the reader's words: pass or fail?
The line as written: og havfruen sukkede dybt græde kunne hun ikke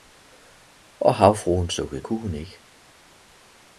fail